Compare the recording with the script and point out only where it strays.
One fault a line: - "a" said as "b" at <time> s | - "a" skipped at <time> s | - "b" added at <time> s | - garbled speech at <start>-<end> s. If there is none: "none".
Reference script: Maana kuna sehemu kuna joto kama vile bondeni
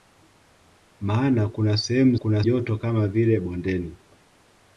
none